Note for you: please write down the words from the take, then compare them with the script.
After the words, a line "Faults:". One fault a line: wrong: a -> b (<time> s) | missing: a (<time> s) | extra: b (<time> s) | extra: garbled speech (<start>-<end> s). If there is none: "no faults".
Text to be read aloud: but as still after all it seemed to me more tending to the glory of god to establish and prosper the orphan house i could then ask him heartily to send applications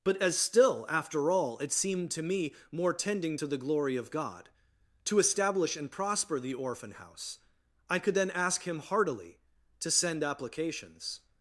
but as still after all it seemed to me more tending to the glory of god to establish and prosper the orphan house i could then ask him heartily to send applications
Faults:
no faults